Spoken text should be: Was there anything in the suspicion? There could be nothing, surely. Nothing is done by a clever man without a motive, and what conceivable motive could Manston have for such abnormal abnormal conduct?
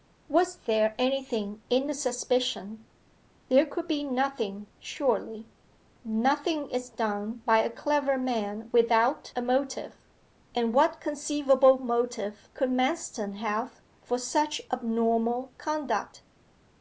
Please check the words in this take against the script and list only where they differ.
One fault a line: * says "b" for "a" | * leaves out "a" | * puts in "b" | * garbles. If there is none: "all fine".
* leaves out "abnormal"